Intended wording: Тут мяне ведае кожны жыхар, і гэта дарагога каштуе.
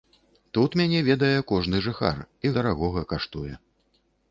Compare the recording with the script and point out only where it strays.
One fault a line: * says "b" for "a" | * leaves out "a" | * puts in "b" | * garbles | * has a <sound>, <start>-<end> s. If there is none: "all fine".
* leaves out "гэта"